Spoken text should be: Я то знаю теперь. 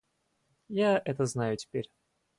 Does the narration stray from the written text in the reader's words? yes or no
yes